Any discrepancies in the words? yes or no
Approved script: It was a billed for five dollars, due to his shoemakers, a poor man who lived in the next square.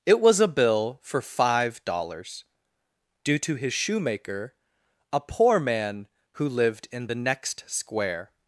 yes